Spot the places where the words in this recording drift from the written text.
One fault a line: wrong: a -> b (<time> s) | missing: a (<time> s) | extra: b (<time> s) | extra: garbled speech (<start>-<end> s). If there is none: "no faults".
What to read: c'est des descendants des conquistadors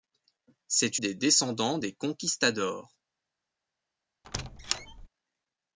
no faults